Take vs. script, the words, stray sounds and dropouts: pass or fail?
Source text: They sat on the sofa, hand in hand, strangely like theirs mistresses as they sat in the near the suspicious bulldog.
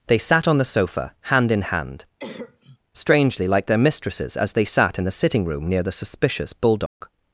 fail